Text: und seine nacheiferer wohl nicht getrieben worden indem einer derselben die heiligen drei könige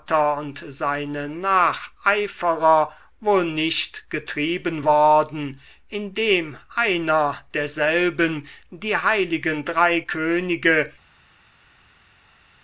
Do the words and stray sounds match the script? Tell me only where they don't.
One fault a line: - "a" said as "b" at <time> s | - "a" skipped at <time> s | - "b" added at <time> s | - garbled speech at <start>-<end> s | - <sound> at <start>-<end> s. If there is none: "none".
none